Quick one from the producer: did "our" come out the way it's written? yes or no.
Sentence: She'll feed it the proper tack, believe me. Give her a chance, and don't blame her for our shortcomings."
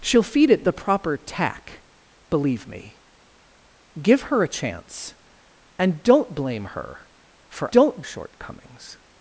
no